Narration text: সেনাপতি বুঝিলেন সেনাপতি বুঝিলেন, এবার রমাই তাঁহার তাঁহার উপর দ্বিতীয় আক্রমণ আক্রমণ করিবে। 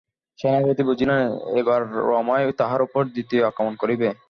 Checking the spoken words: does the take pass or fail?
fail